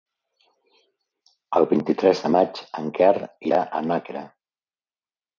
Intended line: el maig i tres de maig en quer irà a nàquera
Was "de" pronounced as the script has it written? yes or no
yes